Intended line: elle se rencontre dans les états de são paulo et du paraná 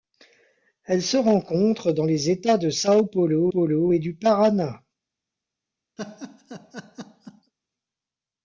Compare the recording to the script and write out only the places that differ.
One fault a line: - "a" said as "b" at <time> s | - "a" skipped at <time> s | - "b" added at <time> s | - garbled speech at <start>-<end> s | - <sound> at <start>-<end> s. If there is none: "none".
- "paulo" added at 3.5 s
- laugh at 6.0-7.5 s